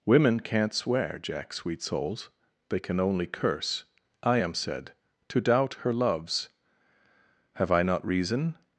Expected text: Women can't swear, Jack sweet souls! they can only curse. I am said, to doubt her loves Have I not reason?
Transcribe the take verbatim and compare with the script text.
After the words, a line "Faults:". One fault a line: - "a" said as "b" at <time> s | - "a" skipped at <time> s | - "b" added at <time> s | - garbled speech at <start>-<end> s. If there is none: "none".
Women can't swear, Jack sweet souls! they can only curse. I am said, to doubt her loves Have I not reason?
Faults:
none